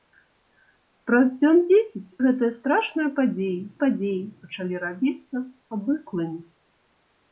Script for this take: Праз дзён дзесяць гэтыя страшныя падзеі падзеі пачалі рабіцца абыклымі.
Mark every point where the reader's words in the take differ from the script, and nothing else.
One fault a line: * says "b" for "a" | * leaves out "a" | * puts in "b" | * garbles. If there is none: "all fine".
all fine